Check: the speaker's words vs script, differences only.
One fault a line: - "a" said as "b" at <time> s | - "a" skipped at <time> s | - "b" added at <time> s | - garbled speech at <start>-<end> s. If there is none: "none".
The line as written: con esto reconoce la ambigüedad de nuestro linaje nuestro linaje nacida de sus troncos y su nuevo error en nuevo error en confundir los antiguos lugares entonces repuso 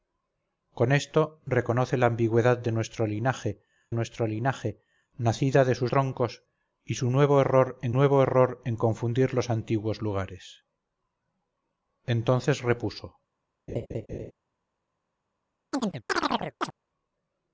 none